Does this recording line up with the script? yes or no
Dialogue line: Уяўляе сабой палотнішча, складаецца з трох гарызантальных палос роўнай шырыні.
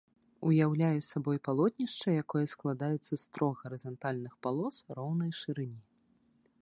no